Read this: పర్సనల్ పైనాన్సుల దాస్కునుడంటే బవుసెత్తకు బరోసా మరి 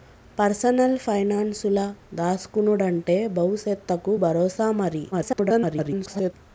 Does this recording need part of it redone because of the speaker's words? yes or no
yes